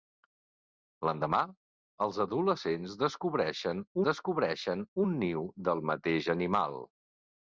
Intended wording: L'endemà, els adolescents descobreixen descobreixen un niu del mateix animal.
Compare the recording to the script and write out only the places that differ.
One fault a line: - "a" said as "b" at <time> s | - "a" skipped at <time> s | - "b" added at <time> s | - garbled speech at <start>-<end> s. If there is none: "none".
none